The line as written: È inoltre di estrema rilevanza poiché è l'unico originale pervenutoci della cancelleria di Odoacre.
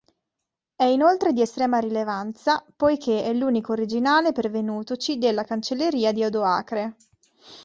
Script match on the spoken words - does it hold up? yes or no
yes